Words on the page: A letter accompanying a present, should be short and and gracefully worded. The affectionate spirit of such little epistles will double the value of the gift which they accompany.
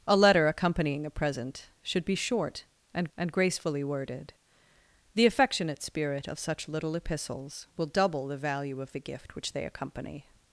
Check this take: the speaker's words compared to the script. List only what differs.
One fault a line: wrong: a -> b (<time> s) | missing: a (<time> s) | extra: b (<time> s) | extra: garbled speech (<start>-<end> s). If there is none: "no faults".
no faults